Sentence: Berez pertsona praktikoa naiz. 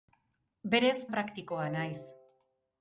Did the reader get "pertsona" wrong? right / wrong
wrong